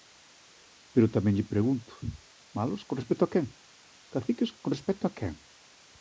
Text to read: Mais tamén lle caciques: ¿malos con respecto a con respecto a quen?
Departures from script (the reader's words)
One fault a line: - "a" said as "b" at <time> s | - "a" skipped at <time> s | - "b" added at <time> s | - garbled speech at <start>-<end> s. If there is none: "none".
- "Mais" said as "Pero" at 0.9 s
- "caciques" said as "pregunto" at 1.5 s
- "quen caciques" added at 3.3 s